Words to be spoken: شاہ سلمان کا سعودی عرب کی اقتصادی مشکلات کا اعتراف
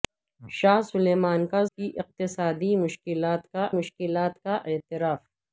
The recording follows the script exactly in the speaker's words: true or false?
false